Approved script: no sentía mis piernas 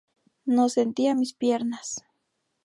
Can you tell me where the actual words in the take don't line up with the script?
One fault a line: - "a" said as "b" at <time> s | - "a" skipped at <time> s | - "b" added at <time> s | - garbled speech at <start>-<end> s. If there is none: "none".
none